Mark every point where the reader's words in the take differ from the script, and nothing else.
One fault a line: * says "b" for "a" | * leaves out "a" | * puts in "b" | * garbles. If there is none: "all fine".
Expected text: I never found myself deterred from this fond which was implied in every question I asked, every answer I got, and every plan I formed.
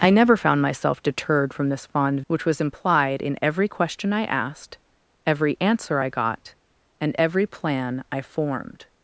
all fine